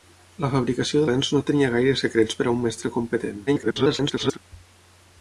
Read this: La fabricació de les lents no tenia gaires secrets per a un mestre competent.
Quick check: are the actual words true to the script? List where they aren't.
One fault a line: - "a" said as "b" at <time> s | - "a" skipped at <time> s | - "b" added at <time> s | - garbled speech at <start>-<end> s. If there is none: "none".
- "les" skipped at 1.1 s
- garbled speech at 3.5-4.4 s